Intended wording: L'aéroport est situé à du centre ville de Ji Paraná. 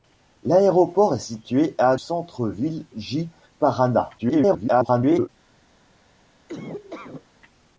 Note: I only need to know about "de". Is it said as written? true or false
false